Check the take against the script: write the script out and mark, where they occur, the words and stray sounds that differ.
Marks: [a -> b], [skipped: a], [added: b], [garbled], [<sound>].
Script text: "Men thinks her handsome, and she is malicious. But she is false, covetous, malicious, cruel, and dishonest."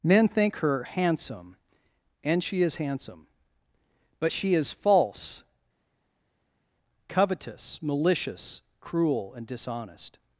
"Men [thinks -> think] her handsome, and she is [malicious. -> handsome] But she is false, covetous, malicious, cruel, and dishonest."